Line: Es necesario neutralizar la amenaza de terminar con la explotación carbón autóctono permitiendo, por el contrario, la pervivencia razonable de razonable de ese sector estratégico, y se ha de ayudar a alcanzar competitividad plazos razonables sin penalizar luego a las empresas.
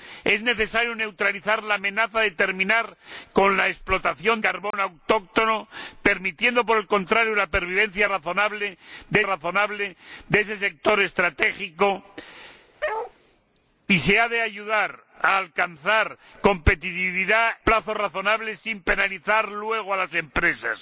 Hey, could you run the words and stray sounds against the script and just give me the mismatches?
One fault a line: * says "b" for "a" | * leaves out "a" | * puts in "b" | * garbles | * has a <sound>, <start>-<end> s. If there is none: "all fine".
* has a dropout, 4.7-4.7 s
* has a bark, 12.8-13.1 s